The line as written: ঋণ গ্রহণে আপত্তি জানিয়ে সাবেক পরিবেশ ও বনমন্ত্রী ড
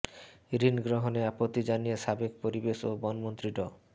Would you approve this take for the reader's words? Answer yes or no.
yes